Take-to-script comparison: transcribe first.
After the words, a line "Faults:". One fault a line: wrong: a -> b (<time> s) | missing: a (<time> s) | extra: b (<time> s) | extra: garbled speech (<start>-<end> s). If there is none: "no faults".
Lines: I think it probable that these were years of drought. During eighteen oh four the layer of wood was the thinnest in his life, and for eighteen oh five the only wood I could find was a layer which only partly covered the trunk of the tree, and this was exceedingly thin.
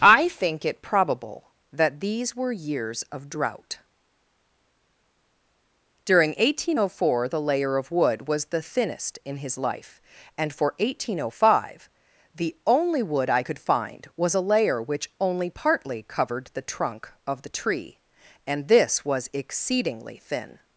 I think it probable that these were years of drought. During eighteen oh four the layer of wood was the thinnest in his life, and for eighteen oh five the only wood I could find was a layer which only partly covered the trunk of the tree, and this was exceedingly thin.
Faults:
no faults